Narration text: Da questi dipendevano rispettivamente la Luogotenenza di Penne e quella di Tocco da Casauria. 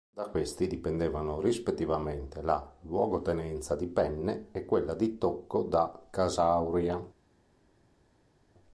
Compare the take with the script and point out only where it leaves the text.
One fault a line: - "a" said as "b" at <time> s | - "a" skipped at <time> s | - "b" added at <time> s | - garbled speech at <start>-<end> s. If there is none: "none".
none